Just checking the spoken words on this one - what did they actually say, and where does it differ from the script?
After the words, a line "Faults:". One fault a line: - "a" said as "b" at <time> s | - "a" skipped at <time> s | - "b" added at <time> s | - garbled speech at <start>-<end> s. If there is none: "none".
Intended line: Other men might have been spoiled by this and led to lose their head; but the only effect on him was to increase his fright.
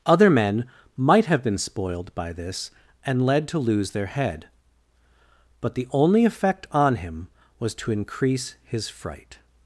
Other men might have been spoiled by this and led to lose their head; but the only effect on him was to increase his fright.
Faults:
none